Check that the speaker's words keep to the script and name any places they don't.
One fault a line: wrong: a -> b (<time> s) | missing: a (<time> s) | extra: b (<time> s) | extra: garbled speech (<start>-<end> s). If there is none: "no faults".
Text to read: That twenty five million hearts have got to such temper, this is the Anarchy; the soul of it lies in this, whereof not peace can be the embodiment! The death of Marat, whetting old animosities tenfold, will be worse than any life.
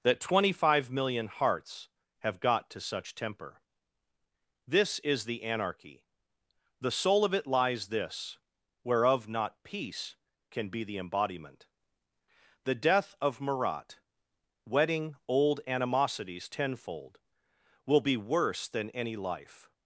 missing: in (7.9 s)